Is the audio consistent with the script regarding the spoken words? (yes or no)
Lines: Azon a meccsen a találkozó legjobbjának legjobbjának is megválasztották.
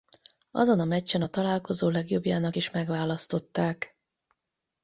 no